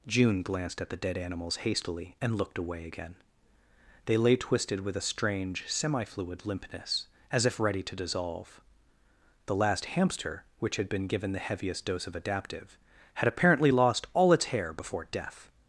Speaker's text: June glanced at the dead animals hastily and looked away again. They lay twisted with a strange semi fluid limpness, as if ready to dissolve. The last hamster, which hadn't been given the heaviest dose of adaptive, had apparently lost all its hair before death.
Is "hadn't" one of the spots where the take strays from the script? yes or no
yes